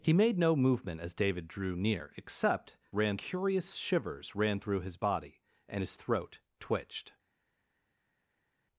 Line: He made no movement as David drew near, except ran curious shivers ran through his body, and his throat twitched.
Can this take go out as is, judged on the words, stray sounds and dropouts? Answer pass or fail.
pass